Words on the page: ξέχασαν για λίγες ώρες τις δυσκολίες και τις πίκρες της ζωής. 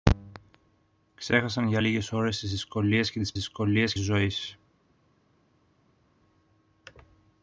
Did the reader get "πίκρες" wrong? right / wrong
wrong